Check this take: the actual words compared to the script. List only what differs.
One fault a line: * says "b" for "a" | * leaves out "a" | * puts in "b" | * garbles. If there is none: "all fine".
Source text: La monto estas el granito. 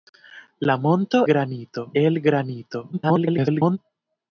* says "granito" for "estas"
* garbles